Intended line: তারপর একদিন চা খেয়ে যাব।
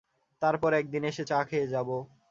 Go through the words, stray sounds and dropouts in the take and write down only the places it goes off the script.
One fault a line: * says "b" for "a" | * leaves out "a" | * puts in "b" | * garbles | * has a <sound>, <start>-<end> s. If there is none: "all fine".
* puts in "এসে"